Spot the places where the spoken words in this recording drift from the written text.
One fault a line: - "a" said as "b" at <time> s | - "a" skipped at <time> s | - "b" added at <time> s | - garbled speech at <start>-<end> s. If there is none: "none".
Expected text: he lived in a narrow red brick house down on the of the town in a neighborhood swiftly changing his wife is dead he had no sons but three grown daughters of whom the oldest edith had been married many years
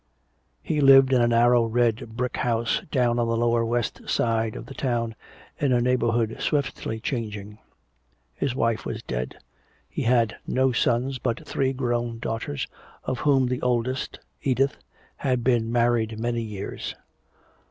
- "lower west side" added at 3.4 s
- "is" said as "was" at 8.8 s